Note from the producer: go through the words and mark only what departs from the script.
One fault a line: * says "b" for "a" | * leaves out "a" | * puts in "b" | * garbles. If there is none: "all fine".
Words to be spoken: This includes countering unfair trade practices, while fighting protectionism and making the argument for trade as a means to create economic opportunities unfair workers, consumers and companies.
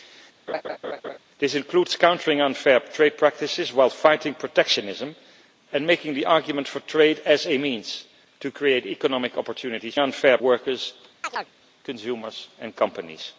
all fine